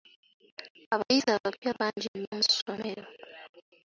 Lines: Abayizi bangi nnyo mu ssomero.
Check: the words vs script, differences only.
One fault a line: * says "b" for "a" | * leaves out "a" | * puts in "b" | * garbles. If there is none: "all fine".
* puts in "abapya"